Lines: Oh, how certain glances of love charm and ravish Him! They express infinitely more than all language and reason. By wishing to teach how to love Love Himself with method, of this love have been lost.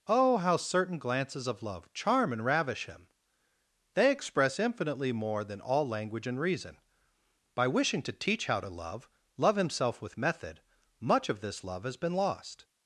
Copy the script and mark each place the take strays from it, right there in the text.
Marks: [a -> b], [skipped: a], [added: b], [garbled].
Oh, how certain glances of love charm and ravish Him! They express infinitely more than all language and reason. By wishing to teach how to love Love Himself with method, [added: much] of this love [have -> has] been lost.